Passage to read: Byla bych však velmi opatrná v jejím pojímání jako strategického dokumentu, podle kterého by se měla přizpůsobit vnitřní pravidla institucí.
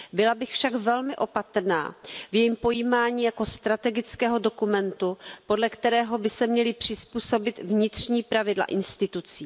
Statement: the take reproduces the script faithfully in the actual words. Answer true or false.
true